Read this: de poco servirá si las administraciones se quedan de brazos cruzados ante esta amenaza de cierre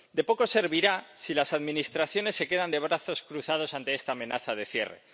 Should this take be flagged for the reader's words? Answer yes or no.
no